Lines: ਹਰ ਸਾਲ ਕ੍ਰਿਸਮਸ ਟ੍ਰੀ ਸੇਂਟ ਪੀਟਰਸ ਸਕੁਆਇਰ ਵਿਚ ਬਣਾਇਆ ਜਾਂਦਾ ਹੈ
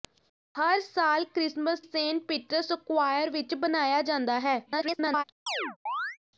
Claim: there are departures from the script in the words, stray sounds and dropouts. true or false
true